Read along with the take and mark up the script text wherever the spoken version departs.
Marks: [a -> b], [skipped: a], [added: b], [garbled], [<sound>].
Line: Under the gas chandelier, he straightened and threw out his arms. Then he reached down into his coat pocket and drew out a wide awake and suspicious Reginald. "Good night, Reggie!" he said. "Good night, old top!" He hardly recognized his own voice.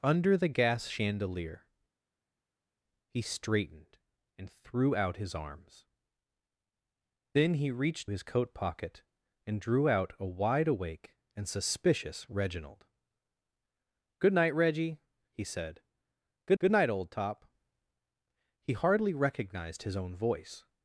Under the gas chandelier, he straightened and threw out his arms. Then he reached [skipped: down into] his coat pocket and drew out a wide awake and suspicious Reginald. "Good night, Reggie!" he said. "Good [added: good] night, old top!" He hardly recognized his own voice.